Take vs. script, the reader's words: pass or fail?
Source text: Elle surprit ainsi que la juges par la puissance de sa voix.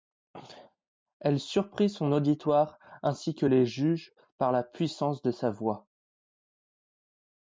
fail